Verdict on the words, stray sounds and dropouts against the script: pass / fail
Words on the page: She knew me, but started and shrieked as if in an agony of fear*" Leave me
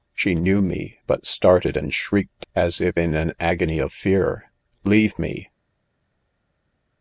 pass